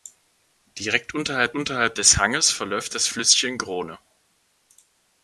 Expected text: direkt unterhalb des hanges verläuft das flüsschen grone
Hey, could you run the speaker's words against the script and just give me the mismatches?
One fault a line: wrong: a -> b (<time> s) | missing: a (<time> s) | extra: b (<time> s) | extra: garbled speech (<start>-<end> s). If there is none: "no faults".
extra: unterhalb (1.5 s)